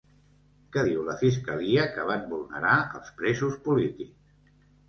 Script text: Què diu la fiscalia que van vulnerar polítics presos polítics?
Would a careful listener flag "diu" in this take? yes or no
no